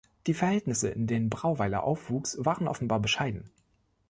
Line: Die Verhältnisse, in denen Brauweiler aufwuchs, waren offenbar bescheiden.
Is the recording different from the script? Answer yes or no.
no